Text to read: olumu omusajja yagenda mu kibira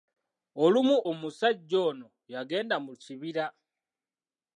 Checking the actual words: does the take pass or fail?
fail